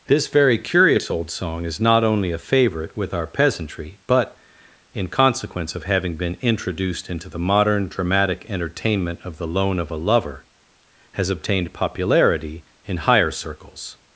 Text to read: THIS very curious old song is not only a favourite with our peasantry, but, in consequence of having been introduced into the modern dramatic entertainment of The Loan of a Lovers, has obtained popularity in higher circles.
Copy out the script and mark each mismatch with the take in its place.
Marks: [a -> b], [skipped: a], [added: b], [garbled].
THIS very curious old song is not only a favourite with our peasantry, but, in consequence of having been introduced into the modern dramatic entertainment of The Loan of a [Lovers, -> Lover] has obtained popularity in higher circles.